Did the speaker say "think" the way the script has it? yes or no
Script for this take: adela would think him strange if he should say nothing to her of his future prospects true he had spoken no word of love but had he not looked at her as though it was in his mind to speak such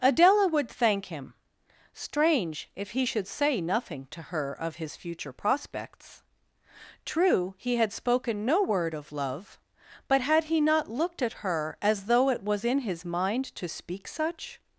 no